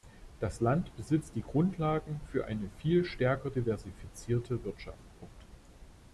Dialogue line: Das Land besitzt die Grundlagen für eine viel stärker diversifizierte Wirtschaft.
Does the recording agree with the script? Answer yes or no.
yes